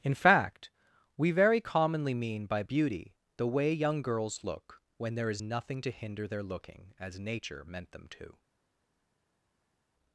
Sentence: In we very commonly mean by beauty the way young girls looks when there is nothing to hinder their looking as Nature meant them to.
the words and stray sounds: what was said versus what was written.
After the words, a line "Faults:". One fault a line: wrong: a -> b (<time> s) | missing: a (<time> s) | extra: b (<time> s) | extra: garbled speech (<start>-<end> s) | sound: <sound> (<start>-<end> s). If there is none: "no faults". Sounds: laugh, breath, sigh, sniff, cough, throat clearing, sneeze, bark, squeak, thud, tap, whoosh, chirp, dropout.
In fact, we very commonly mean by beauty the way young girls look when there is nothing to hinder their looking as Nature meant them to.
Faults:
extra: fact (0.1 s)
wrong: looks -> look (4.4 s)